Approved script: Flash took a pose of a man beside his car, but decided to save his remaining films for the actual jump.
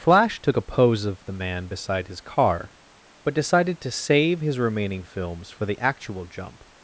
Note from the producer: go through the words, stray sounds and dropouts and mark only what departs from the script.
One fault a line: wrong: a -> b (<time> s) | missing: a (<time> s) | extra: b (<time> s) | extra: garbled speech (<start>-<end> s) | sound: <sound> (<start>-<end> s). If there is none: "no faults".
wrong: a -> the (1.3 s)